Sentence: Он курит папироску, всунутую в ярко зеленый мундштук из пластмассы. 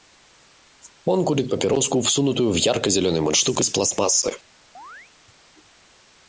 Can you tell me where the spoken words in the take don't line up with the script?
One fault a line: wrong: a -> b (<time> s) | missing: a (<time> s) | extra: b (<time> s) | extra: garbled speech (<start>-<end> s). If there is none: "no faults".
no faults